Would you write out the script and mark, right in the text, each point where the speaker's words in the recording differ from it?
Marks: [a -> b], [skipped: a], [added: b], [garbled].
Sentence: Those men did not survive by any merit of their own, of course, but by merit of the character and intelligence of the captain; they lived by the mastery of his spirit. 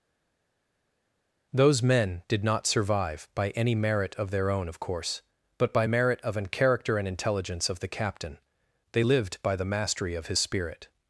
Those men did not survive by any merit of their own, of course, but by merit of [the -> an] character and intelligence of the captain; they lived by the mastery of his spirit.